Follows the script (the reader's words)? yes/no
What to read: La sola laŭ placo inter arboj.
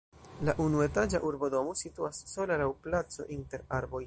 no